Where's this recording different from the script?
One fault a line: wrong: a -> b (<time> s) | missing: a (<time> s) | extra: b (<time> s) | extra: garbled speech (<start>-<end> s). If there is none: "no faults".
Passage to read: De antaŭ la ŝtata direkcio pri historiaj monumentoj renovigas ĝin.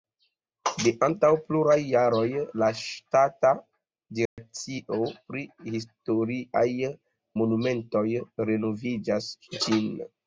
extra: pluraj jaroj (1.5 s)